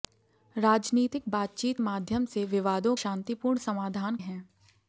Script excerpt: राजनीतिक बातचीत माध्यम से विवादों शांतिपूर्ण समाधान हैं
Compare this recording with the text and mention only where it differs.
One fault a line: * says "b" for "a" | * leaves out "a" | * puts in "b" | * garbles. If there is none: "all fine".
all fine